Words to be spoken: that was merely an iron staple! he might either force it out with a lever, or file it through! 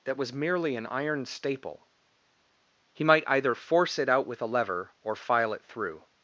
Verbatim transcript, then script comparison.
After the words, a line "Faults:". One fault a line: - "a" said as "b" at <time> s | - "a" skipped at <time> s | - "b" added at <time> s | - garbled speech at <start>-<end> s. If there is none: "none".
that was merely an iron staple! he might either force it out with a lever, or file it through!
Faults:
none